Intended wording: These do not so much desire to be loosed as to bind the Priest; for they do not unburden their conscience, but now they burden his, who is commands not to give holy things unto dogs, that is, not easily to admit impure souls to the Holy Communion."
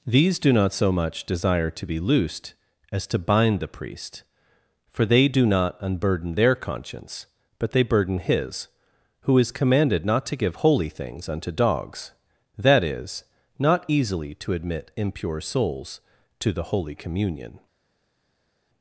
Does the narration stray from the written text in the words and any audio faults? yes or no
yes